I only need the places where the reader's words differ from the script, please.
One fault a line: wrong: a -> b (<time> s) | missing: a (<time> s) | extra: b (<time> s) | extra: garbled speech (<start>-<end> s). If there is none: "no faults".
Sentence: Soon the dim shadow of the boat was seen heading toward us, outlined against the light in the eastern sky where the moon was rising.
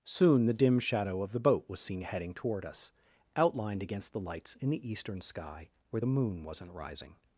wrong: light -> lights (4.2 s)
wrong: was -> wasn't (6.4 s)